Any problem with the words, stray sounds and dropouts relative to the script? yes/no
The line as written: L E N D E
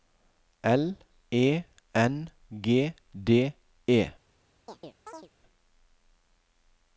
yes